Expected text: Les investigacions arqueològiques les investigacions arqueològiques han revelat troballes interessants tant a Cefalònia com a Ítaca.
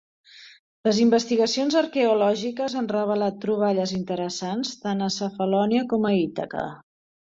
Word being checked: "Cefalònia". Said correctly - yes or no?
yes